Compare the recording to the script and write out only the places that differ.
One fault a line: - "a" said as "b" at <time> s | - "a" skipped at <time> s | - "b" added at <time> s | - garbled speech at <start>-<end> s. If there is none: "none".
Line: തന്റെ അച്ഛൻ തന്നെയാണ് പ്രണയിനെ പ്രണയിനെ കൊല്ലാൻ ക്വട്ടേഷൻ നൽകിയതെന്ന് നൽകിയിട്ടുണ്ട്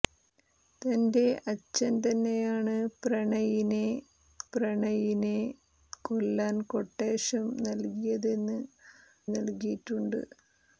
none